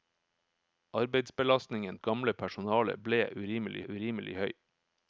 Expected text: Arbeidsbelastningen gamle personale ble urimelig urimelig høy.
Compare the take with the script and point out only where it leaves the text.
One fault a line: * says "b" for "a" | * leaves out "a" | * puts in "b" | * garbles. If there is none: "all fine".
all fine